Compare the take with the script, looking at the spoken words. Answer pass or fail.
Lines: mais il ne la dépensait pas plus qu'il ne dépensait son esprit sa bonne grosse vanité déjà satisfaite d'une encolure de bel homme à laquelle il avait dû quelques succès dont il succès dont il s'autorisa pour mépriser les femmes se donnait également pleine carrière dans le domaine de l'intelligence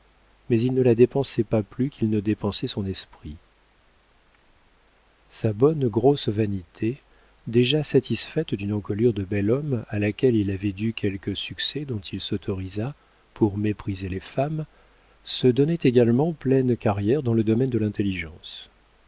fail